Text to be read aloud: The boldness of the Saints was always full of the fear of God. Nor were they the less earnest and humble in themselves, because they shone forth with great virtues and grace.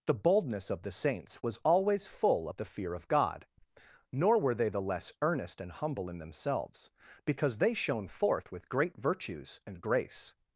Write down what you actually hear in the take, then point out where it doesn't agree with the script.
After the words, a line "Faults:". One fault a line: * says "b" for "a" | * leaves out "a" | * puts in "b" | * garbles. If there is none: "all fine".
The boldness of the Saints was always full of the fear of God. Nor were they the less earnest and humble in themselves, because they shone forth with great virtues and grace.
Faults:
all fine